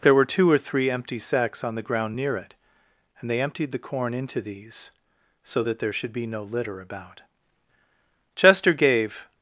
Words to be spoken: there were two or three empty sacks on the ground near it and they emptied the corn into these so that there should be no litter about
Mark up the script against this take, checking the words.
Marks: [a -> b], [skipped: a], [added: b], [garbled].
there were two or three empty sacks on the ground near it and they emptied the corn into these so that there should be no litter about [added: chester gave]